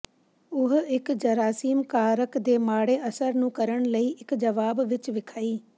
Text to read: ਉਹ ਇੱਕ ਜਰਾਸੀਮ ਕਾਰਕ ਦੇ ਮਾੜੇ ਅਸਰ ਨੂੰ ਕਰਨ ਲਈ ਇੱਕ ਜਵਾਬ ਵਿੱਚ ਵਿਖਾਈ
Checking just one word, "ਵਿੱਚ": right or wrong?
right